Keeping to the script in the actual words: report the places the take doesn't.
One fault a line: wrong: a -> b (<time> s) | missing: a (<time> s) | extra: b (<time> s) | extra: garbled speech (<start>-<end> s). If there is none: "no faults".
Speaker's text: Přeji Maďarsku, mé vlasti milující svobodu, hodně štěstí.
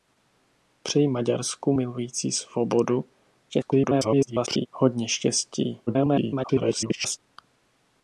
missing: mé vlasti (1.7 s)
extra: garbled speech (3.5-4.7 s)
extra: garbled speech (5.9-7.2 s)